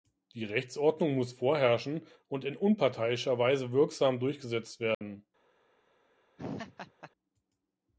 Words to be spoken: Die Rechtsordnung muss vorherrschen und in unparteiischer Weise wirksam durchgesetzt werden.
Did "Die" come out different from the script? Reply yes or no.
no